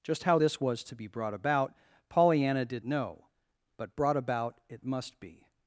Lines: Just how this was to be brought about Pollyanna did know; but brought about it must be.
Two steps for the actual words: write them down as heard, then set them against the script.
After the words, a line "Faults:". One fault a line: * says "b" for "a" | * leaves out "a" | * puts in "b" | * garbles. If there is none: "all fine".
Just how this was to be brought about Pollyanna did know; but brought about it must be.
Faults:
all fine